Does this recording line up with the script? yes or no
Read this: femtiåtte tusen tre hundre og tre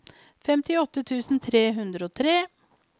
yes